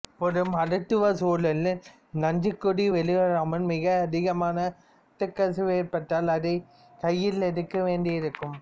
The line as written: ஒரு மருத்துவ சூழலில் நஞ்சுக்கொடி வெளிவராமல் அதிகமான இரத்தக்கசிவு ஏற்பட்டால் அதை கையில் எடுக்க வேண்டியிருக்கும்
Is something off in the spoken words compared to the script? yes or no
yes